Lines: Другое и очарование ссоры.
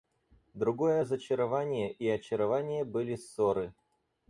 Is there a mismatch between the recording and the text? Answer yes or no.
yes